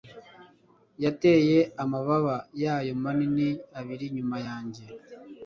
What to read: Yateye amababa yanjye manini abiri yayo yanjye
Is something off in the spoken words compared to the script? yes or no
yes